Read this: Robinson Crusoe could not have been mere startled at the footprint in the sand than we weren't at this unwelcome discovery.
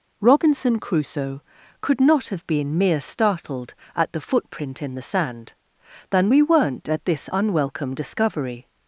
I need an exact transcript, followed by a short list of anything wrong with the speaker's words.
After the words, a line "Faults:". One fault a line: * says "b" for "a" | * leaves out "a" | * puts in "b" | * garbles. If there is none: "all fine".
Robinson Crusoe could not have been mere startled at the footprint in the sand than we weren't at this unwelcome discovery.
Faults:
all fine